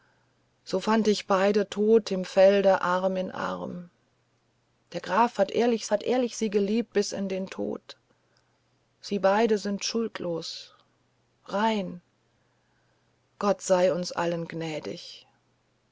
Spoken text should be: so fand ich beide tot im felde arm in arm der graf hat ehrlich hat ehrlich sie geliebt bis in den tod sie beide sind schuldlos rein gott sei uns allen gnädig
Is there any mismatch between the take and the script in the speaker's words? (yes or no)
no